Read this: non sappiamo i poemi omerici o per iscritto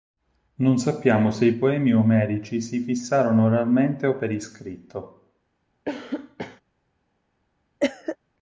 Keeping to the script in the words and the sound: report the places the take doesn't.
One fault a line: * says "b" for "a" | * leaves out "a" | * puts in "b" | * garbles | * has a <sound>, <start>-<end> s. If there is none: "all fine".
* puts in "se"
* puts in "si fissarono oralmente"
* has a cough, 5.9-6.6 s
* has a cough, 7.8-8.2 s